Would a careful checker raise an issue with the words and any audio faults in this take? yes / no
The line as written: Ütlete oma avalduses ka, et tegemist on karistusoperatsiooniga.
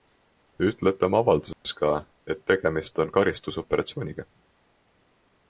yes